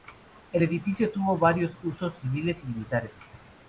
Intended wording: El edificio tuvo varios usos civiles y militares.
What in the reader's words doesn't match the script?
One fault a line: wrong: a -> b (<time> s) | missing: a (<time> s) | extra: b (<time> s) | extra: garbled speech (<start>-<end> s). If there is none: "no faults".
no faults